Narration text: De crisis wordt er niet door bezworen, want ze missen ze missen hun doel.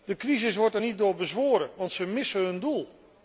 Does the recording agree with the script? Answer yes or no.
no